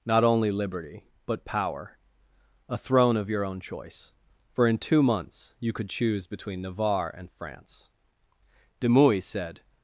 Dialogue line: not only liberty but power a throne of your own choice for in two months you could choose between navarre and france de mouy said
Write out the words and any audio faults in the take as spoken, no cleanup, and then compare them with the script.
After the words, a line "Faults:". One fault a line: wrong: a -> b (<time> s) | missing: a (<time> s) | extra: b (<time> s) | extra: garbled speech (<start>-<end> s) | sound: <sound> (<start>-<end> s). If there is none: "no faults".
not only liberty but power a throne of your own choice for in two months you could choose between navarre and france de mouy said
Faults:
no faults